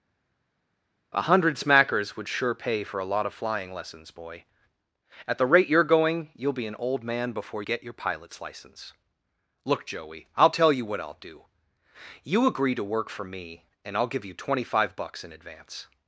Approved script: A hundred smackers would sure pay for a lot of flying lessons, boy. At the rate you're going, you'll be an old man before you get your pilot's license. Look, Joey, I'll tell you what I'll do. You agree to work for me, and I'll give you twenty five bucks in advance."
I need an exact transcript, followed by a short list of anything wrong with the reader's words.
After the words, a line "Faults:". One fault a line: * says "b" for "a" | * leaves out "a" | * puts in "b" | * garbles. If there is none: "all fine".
A hundred smackers would sure pay for a lot of flying lessons, boy. At the rate you're going, you'll be an old man before get your pilot's license. Look, Joey, I'll tell you what I'll do. You agree to work for me, and I'll give you twenty five bucks in advance."
Faults:
* leaves out "you"